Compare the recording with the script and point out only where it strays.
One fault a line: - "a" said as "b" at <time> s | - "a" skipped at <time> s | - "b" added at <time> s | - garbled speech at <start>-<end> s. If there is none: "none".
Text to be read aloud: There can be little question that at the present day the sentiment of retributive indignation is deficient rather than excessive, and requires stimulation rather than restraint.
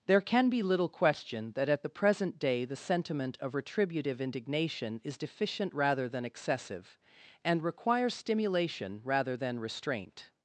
none